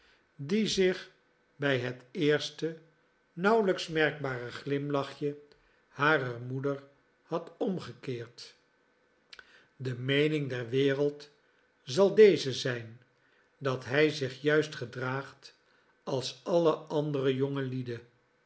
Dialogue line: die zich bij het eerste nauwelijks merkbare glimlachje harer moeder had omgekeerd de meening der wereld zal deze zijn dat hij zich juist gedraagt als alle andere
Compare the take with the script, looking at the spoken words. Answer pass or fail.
pass